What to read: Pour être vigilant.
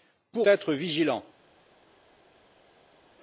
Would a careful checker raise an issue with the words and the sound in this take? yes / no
no